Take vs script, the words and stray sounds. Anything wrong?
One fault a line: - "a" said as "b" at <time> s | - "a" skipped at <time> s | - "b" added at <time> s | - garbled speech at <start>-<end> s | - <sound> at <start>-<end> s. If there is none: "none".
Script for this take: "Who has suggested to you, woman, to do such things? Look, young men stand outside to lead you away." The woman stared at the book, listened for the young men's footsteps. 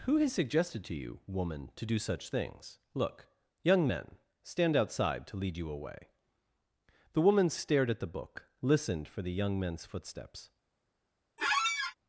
- squeak at 11.4-11.9 s